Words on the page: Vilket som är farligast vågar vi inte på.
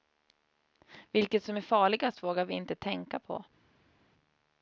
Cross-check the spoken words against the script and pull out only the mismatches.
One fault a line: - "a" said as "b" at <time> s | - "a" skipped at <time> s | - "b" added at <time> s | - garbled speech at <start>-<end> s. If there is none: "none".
- "tänka" added at 2.8 s